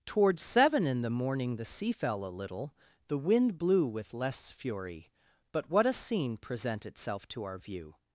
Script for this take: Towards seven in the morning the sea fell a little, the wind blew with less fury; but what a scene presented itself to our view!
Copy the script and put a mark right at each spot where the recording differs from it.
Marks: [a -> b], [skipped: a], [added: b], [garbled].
Towards seven in the morning the sea fell a little, the wind blew with less fury; but what a scene [presented -> present] itself to our view!